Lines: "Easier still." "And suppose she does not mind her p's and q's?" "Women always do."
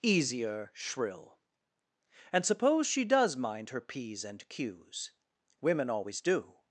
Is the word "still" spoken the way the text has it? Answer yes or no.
no